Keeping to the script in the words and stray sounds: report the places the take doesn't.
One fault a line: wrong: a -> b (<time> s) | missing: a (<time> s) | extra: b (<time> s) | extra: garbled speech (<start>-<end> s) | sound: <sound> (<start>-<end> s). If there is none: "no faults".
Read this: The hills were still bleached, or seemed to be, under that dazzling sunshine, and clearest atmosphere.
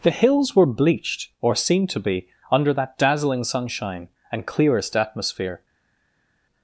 missing: still (0.7 s)